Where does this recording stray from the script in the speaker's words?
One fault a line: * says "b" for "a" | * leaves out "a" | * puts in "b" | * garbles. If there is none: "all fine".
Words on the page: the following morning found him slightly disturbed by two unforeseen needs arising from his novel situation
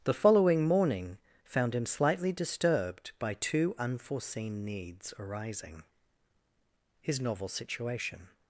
* leaves out "from"